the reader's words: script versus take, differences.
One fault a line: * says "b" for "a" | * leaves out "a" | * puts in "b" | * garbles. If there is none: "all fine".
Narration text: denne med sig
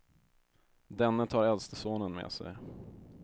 * puts in "tar äldste sonen"